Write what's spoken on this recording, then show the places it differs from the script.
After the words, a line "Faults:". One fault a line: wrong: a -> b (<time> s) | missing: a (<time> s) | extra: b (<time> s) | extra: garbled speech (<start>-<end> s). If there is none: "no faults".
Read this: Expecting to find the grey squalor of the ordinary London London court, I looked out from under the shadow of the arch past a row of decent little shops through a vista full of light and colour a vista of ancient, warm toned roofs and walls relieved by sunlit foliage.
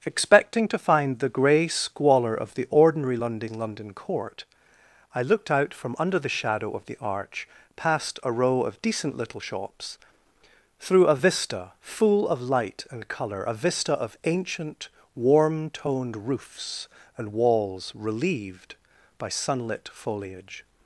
Expecting to find the grey squalor of the ordinary London London court, I looked out from under the shadow of the arch past a row of decent little shops through a vista full of light and colour a vista of ancient, warm toned roofs and walls relieved by sunlit foliage.
Faults:
no faults